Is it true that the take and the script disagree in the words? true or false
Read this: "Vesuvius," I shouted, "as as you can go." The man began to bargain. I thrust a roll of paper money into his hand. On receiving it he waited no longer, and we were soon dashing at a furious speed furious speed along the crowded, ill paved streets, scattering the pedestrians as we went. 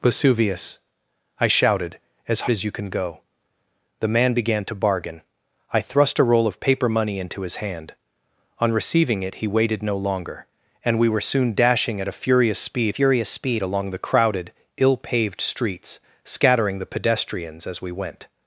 false